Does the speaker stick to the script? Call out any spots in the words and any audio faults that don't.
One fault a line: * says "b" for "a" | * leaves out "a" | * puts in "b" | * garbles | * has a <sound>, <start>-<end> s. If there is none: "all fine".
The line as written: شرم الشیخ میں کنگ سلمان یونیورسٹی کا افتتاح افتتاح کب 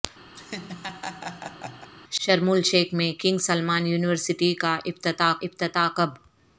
* has a laugh, 0.3-1.9 s